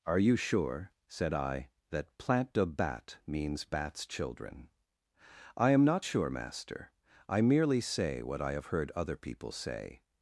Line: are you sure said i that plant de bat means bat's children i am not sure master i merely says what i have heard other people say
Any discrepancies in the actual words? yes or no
yes